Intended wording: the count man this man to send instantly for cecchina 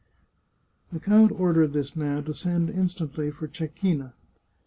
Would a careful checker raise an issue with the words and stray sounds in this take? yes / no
yes